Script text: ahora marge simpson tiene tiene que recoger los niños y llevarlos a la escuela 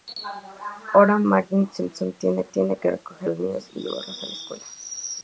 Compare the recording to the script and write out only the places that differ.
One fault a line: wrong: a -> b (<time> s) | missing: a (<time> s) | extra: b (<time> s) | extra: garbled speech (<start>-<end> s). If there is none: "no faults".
no faults